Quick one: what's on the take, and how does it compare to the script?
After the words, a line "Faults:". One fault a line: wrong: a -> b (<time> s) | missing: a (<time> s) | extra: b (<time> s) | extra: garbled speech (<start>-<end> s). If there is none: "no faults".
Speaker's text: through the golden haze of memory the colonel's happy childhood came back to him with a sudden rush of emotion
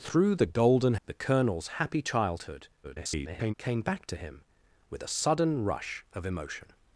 through the golden the colonel's happy childhood [garbled] came back to him with a sudden rush of emotion
Faults:
missing: haze of memory (0.9 s)
extra: garbled speech (2.8-3.5 s)